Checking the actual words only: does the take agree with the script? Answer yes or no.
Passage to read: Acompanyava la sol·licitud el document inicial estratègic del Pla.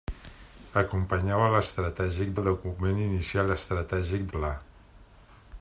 no